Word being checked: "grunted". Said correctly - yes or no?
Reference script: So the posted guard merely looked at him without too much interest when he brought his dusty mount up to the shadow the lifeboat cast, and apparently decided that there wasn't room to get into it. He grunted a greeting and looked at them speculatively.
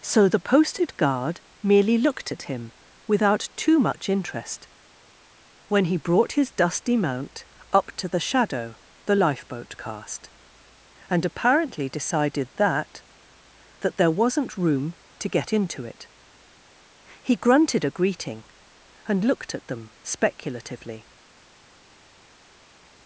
yes